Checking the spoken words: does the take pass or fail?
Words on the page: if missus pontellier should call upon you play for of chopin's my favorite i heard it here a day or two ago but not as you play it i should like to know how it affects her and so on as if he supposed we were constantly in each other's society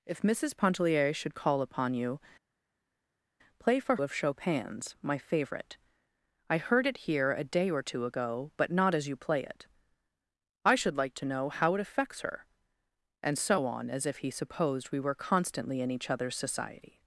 pass